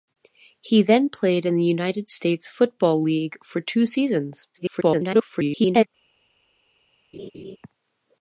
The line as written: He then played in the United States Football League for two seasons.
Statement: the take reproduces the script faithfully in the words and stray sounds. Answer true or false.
false